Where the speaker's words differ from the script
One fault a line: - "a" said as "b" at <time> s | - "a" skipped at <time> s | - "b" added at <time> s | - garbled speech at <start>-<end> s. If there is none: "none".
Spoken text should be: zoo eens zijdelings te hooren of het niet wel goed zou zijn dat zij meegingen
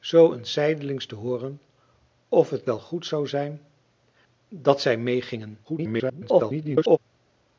- "niet" skipped at 2.7 s
- garbled speech at 5.6-7.0 s